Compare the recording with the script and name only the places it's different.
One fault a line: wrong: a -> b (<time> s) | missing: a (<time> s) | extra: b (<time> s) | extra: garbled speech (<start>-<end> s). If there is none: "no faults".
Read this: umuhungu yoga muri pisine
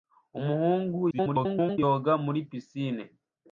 extra: garbled speech (1.1-1.8 s)